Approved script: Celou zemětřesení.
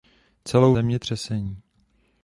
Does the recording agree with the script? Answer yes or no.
yes